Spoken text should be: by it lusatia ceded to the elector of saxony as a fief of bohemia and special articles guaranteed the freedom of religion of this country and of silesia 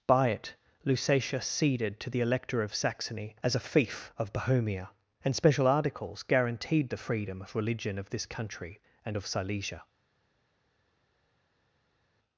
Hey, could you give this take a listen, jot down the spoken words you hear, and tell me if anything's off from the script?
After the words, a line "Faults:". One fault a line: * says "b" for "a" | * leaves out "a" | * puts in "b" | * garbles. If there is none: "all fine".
by it lusatia ceded to the elector of saxony as a fief of bohemia and special articles guaranteed the freedom of religion of this country and of silesia
Faults:
all fine